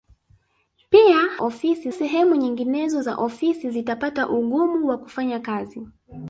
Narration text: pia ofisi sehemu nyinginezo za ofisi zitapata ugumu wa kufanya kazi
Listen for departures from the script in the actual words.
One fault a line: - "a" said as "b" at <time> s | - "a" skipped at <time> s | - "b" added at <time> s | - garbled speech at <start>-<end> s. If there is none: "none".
none